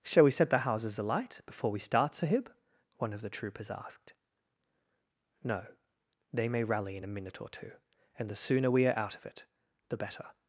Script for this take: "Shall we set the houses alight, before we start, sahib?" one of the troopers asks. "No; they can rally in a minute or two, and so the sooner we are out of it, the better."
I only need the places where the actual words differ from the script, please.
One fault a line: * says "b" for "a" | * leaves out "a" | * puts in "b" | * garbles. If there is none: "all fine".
* says "asked" for "asks"
* says "may" for "can"
* leaves out "so"